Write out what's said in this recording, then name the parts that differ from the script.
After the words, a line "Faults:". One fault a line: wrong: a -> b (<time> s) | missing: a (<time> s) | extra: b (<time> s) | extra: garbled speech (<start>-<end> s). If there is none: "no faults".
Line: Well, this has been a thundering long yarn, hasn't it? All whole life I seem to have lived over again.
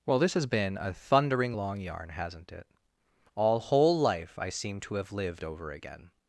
Well, this has been a thundering long yarn, hasn't it? All whole life I seem to have lived over again.
Faults:
no faults